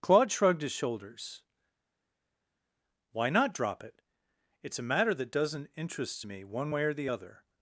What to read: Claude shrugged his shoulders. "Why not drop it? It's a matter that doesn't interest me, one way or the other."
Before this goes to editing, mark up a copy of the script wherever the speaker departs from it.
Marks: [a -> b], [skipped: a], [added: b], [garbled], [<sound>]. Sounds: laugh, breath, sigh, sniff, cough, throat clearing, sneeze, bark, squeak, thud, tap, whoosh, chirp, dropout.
Claude shrugged his shoulders. "Why not drop it? It's a matter that doesn't interest me, one way or the other."